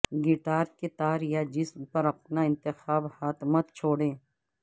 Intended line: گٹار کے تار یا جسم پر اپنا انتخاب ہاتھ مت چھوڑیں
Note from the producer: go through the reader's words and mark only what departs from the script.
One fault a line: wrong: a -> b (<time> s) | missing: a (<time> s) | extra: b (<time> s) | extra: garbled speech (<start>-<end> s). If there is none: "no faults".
no faults